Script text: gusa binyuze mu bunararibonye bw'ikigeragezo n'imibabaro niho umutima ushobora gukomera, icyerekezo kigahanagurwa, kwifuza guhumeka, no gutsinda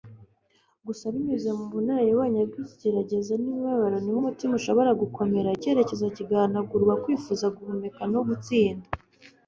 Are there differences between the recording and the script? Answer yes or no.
no